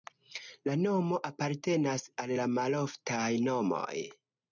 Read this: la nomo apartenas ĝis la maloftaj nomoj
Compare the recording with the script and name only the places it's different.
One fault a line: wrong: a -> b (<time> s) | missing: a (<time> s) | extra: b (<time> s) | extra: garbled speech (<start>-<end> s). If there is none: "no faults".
wrong: ĝis -> al (2.2 s)